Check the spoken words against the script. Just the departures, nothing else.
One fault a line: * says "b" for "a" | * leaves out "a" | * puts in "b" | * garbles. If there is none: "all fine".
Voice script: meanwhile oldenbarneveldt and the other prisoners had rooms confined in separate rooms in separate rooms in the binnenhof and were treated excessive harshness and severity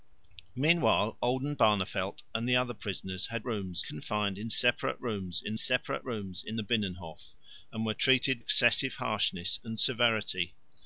all fine